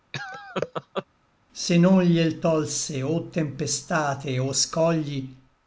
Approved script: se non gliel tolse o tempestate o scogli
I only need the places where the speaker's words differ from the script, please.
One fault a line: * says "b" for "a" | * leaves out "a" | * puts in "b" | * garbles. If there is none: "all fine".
all fine